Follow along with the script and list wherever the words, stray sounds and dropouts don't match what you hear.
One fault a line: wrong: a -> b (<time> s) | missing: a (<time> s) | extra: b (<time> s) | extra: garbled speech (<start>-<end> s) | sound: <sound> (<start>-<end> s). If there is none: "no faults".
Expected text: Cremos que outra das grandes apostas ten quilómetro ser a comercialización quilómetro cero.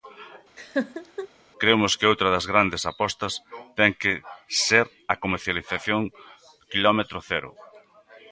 sound: laugh (0.6-1.3 s)
wrong: quilómetro -> que (4.0 s)